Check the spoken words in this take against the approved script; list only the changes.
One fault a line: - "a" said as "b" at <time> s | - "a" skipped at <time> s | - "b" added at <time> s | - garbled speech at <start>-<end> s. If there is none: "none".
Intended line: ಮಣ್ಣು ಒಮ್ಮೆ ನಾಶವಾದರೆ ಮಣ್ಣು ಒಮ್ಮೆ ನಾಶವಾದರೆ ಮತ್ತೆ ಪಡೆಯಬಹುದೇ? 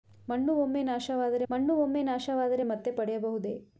none